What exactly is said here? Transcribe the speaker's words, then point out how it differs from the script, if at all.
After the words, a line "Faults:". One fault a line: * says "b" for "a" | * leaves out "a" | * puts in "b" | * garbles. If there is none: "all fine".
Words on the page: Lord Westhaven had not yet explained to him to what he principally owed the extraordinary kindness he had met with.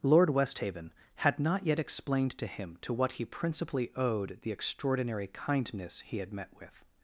Lord Westhaven had not yet explained to him to what he principally owed the extraordinary kindness he had met with.
Faults:
all fine